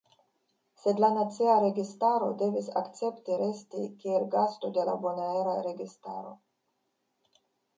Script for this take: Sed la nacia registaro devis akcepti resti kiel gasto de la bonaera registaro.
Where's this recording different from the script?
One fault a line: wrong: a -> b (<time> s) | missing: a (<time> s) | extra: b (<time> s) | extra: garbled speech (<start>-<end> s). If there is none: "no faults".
no faults